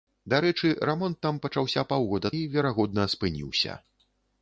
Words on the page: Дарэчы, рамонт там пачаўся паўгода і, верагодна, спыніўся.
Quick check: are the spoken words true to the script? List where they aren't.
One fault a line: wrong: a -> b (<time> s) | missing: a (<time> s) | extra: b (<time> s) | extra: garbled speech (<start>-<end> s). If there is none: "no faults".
no faults